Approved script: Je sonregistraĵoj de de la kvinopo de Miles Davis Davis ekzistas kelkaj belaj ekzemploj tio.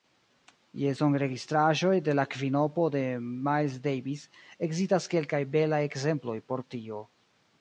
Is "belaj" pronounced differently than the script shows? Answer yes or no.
no